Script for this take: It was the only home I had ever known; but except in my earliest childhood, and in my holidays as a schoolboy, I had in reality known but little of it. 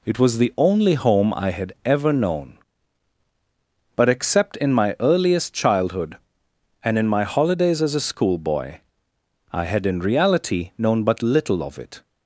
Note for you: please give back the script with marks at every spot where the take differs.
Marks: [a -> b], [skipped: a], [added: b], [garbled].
It was the only home I had ever known; but except in my earliest childhood, and in my holidays as a schoolboy, I had in reality known but little of it.